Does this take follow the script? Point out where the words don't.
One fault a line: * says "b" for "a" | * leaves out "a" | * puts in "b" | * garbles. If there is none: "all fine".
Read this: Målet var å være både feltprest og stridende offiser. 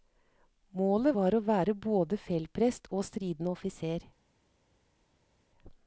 all fine